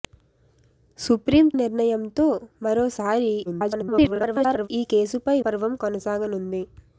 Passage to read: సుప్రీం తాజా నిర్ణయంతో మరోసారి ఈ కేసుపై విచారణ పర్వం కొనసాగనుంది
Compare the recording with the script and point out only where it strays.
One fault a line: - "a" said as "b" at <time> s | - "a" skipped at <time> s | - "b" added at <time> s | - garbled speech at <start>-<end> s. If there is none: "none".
- "తాజా" skipped at 1.5 s
- garbled speech at 3.5-4.7 s
- "విచారణ" skipped at 5.4 s